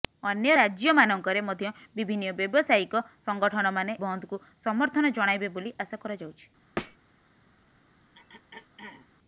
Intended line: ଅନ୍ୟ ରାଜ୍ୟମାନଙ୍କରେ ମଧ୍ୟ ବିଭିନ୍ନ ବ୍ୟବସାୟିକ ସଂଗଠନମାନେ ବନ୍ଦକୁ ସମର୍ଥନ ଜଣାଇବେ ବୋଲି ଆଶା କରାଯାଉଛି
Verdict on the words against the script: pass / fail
pass